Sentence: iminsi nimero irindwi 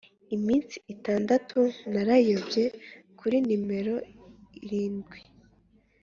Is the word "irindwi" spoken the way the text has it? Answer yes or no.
yes